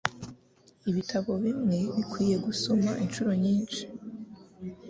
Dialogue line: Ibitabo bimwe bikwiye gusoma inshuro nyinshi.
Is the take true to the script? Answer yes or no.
yes